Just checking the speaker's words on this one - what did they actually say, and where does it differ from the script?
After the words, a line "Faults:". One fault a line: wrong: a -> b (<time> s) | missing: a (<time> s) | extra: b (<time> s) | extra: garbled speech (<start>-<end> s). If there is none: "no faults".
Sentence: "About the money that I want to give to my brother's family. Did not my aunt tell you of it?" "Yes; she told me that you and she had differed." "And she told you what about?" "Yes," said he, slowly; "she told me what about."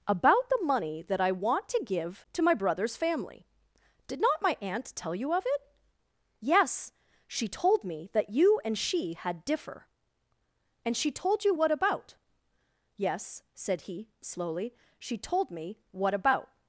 "About the money that I want to give to my brother's family. Did not my aunt tell you of it?" "Yes; she told me that you and she had differ." "And she told you what about?" "Yes," said he, slowly; "she told me what about."
Faults:
wrong: differed -> differ (9.4 s)